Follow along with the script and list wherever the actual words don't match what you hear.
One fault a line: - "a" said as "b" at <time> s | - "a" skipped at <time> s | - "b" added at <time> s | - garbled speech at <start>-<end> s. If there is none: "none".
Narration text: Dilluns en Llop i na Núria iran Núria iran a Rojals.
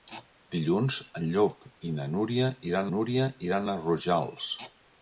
none